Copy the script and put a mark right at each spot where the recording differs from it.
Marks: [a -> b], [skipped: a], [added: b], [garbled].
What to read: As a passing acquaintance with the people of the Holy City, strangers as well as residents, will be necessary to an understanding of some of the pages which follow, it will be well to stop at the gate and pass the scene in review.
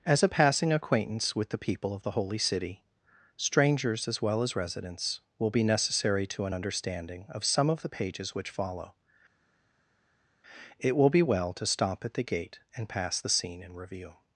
As a passing acquaintance with the people of the Holy City, strangers as well as residents, will be necessary to an understanding of some of the pages which follow, it will be well to stop at the gate and pass the scene in review.